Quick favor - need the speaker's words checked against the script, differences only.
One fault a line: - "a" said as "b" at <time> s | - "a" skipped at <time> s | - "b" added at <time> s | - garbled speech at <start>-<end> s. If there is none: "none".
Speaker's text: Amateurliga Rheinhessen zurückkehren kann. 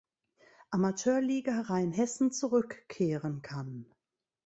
none